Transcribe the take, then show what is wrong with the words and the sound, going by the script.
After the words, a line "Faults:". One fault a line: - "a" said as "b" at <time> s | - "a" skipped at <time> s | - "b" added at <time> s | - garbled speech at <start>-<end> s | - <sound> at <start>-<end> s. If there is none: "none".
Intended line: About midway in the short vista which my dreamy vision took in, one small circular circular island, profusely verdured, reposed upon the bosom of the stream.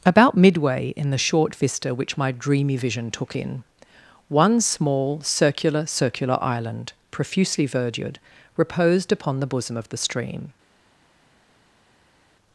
About midway in the short vista which my dreamy vision took in, one small circular circular island, profusely verdured, reposed upon the bosom of the stream.
Faults:
none